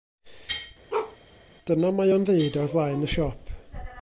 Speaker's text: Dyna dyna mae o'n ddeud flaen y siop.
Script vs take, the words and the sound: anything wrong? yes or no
yes